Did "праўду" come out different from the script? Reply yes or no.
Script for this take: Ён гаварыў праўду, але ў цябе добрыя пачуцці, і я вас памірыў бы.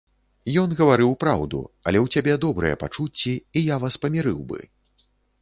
no